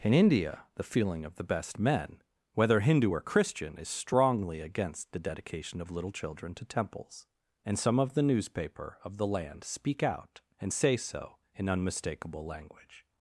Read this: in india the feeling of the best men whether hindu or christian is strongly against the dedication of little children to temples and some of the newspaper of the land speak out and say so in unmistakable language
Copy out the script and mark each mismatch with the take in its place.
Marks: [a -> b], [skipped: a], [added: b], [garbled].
in india the feeling of the best men whether hindu or christian is strongly against the dedication of little children to temples and some of the newspaper of the land speak out and say so in unmistakable language